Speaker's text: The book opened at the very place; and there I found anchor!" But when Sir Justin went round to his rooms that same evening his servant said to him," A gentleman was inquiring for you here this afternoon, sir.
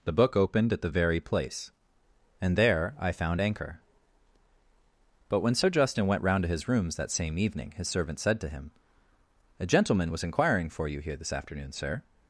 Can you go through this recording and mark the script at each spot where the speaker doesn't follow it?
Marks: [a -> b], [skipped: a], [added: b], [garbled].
The book opened at the very place; and there I found anchor!" But when Sir Justin went round to his rooms that same evening his servant said to him," A gentleman was inquiring for you here this afternoon, sir.